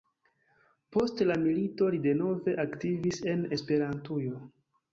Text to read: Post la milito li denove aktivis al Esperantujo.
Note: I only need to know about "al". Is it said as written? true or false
false